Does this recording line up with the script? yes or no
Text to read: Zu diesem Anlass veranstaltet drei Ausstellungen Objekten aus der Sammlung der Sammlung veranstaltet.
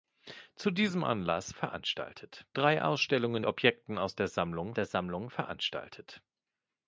yes